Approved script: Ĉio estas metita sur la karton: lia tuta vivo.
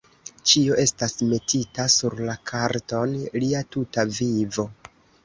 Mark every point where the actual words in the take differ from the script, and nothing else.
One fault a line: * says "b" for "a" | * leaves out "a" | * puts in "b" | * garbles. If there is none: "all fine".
all fine